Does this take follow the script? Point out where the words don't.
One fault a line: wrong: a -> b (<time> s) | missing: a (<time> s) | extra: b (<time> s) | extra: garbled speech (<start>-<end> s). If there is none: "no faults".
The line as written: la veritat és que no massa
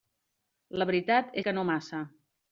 missing: és (1.4 s)